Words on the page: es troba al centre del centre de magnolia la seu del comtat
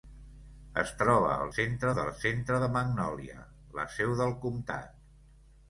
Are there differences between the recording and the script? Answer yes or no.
no